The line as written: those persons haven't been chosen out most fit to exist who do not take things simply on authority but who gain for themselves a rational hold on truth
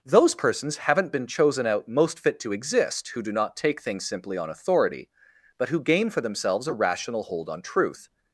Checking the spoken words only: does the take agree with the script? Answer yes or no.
yes